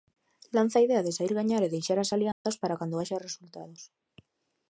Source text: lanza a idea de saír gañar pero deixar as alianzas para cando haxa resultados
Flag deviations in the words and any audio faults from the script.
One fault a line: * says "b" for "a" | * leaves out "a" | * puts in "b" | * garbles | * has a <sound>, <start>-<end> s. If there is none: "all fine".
* says "e" for "pero"
* has a dropout, 2.3-2.5 s